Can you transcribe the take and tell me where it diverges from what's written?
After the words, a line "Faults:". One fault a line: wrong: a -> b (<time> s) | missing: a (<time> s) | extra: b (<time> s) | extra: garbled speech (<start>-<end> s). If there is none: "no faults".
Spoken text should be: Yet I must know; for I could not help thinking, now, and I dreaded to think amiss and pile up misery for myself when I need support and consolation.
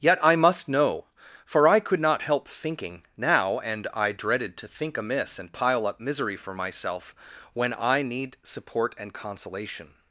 Yet I must know; for I could not help thinking, now, and I dreaded to think amiss and pile up misery for myself when I need support and consolation.
Faults:
no faults